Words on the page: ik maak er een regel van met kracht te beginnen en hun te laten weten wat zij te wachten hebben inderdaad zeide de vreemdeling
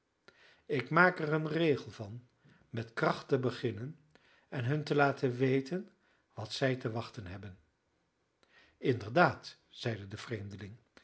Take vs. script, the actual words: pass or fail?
pass